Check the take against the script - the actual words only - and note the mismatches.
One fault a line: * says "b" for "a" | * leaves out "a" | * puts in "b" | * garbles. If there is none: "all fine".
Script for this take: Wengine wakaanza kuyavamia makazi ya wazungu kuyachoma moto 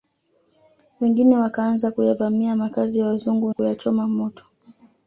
all fine